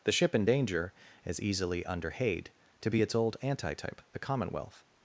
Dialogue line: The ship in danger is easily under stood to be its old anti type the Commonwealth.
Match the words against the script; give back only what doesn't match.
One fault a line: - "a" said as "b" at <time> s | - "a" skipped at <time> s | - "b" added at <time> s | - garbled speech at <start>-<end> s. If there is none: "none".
- "stood" said as "hade" at 2.1 s